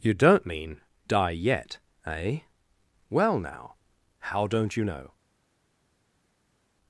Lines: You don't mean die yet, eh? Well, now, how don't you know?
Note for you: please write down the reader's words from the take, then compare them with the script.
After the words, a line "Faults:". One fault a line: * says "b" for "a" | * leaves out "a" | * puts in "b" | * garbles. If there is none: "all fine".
You don't mean die yet, eh? Well, now, how don't you know?
Faults:
all fine